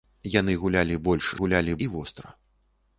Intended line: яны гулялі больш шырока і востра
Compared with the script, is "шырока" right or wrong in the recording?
wrong